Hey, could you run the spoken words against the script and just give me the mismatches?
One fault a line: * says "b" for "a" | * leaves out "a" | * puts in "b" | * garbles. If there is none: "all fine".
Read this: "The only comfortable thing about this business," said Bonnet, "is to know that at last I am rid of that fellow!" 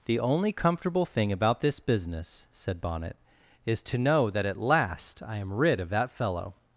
all fine